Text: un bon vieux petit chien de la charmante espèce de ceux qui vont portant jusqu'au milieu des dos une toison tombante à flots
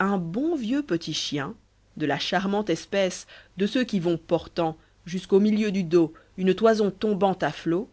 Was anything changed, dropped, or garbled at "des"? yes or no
yes